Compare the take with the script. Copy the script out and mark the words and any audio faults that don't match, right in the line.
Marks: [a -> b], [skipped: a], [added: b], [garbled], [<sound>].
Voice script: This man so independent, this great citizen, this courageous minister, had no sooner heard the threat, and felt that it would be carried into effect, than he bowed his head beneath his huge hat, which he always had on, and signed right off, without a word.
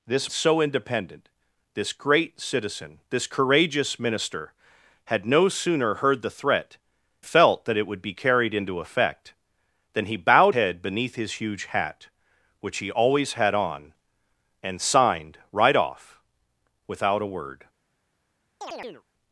This [skipped: man] so independent, this great citizen, this courageous minister, had no sooner heard the threat, [skipped: and] felt that it would be carried into effect, than he bowed [skipped: his] head beneath his huge hat, which he always had on, and signed right off, without a word. [chirp]